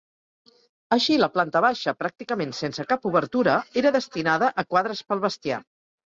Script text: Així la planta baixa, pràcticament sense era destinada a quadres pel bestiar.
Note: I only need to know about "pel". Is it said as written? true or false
true